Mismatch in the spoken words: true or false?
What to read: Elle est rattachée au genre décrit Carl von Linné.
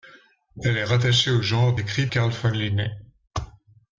false